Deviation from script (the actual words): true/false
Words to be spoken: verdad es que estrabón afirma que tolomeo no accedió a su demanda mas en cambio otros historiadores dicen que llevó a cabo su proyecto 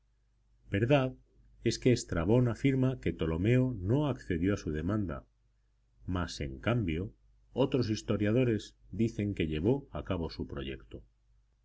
false